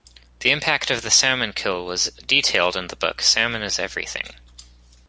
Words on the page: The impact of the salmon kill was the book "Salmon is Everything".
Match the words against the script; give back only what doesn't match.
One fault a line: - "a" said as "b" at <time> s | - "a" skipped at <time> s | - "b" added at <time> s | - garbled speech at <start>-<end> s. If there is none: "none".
- "detailed in" added at 2.2 s